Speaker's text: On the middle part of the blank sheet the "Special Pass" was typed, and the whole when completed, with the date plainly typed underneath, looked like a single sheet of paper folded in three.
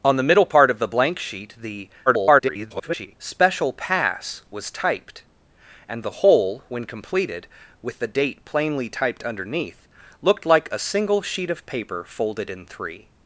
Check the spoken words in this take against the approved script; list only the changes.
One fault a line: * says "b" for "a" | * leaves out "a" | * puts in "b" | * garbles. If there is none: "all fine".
* garbles